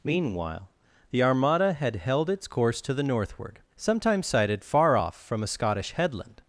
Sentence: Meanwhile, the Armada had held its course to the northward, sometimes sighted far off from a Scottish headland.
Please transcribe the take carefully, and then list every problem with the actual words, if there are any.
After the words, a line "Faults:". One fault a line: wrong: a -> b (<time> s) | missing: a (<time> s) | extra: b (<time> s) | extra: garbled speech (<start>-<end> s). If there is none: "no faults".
Meanwhile, the Armada had held its course to the northward, sometimes sighted far off from a Scottish headland.
Faults:
no faults